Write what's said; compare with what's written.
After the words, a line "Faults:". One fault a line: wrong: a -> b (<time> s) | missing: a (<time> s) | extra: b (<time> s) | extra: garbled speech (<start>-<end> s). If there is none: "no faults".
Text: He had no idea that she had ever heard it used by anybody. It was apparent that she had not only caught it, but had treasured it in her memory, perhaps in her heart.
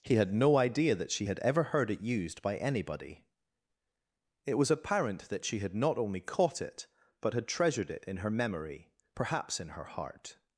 He had no idea that she had ever heard it used by anybody. It was apparent that she had not only caught it, but had treasured it in her memory, perhaps in her heart.
Faults:
no faults